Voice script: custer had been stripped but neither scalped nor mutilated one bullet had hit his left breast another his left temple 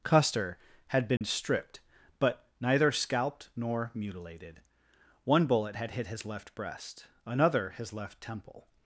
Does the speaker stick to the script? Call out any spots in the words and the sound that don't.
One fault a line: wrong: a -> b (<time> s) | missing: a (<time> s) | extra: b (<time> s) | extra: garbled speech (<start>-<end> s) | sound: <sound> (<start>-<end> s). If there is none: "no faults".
sound: dropout (1.2-1.2 s)